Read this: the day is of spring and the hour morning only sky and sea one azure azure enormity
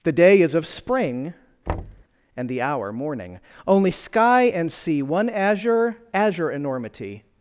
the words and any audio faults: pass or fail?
fail